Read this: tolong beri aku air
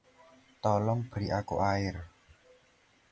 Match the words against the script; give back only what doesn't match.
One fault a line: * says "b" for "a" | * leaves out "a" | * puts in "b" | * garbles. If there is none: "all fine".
all fine